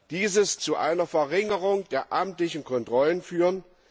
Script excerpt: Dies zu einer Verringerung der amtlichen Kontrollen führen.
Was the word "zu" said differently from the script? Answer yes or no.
no